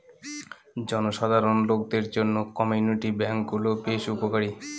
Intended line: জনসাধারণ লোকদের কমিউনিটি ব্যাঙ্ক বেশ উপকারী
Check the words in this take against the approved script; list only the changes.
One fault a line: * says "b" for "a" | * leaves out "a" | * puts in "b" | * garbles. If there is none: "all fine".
* puts in "জন্য"
* puts in "গুলো"